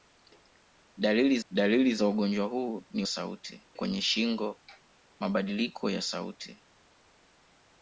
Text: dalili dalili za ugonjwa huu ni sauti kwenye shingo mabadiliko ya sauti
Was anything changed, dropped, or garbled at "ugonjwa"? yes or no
no